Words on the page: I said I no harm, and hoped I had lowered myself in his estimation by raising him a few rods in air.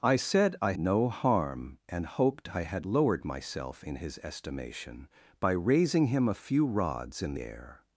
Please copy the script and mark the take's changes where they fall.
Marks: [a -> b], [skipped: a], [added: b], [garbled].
I said I no harm, and hoped I had lowered myself in his estimation by raising him a few rods in air.